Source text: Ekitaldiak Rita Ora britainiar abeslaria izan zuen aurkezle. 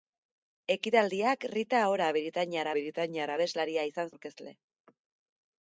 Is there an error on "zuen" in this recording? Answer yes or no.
yes